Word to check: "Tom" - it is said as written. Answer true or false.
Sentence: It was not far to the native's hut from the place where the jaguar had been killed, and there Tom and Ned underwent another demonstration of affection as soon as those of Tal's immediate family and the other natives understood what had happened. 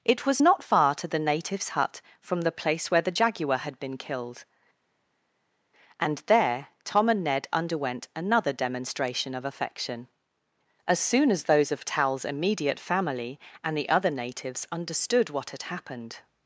true